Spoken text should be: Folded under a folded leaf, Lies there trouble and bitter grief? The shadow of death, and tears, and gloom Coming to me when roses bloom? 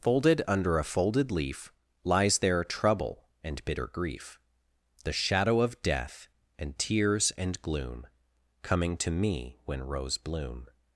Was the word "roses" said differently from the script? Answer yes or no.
yes